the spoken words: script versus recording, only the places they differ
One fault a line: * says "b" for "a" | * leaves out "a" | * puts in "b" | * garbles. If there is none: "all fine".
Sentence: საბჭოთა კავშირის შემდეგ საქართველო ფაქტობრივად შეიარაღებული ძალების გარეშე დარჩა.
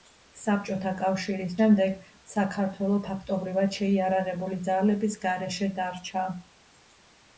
all fine